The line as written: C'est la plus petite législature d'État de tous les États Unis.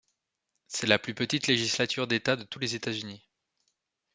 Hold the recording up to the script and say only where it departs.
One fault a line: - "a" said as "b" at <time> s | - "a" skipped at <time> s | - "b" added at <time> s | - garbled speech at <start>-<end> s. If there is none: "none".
none